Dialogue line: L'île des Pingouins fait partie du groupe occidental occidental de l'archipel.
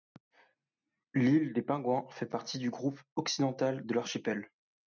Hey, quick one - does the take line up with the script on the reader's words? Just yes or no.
no